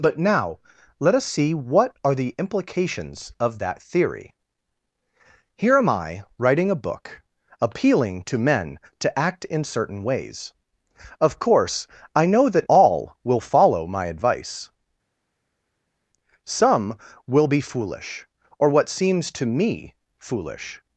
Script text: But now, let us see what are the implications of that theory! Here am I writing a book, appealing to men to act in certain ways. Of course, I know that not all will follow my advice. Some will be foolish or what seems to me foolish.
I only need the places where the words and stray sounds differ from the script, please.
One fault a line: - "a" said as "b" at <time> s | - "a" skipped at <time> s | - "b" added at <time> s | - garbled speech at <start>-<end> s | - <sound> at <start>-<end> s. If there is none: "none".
- "not" skipped at 12.7 s